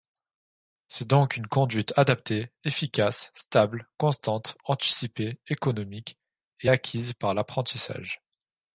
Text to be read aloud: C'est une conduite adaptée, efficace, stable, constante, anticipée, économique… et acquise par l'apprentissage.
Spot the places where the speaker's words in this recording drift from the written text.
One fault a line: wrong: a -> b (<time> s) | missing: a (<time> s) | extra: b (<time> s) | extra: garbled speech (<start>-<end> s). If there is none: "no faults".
extra: donc (1.1 s)